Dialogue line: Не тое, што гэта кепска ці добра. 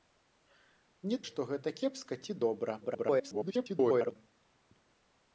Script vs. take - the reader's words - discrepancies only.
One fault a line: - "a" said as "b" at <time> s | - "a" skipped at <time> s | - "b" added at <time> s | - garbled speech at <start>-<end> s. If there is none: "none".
- "тое" skipped at 1.2 s
- garbled speech at 2.8-4.2 s